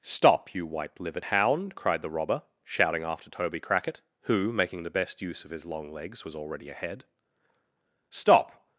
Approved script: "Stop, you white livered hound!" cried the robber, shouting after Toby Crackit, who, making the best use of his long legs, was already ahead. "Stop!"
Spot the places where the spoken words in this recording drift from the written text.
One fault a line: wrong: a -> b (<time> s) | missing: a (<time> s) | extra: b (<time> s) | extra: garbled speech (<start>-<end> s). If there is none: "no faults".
no faults